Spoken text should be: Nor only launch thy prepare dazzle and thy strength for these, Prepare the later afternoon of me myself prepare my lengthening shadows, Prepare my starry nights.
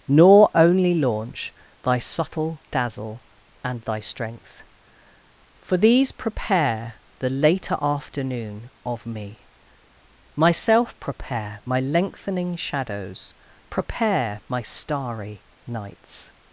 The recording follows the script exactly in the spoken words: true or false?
false